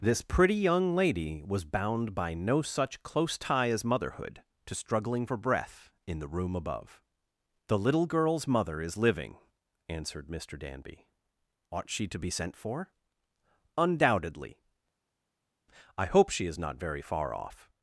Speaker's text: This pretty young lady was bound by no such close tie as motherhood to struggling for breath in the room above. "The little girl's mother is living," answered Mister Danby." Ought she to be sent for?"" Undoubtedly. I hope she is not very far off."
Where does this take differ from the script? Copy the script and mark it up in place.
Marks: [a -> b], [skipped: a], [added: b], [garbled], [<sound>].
This pretty young lady was bound by no such close tie as motherhood to struggling for breath in the room above. "The little girl's mother is living," answered Mister Danby." Ought she to be sent for?"" Undoubtedly. I hope she is not very far off."